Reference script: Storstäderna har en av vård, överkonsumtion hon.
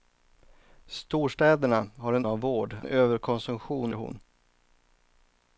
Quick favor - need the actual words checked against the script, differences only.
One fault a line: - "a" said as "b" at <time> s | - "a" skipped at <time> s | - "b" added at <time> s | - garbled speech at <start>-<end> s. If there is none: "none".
none